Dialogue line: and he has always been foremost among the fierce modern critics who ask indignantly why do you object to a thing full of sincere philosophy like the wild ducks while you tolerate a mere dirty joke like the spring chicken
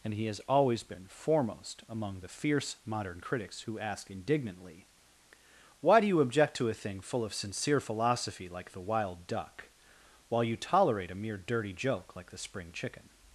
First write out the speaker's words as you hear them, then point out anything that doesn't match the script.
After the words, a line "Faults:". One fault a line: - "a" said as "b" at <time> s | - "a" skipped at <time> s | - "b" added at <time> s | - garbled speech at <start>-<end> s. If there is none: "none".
and he has always been foremost among the fierce modern critics who ask indignantly why do you object to a thing full of sincere philosophy like the wild duck while you tolerate a mere dirty joke like the spring chicken
Faults:
- "ducks" said as "duck" at 9.2 s